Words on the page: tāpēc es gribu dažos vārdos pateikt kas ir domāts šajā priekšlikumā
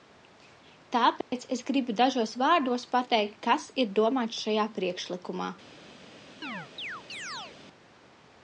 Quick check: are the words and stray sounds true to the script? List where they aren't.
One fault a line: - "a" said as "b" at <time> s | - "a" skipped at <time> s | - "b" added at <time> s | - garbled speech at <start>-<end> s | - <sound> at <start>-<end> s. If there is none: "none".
- dropout at 1.2-1.3 s
- chirp at 6.4-7.6 s